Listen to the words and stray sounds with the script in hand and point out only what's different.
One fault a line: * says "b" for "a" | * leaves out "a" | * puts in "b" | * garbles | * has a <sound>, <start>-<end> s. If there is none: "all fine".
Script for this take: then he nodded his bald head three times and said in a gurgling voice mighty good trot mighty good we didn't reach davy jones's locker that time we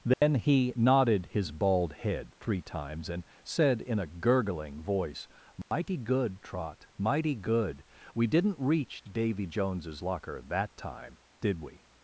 * has a dropout, 0.1-0.2 s
* has a dropout, 5.6-5.7 s
* puts in "did"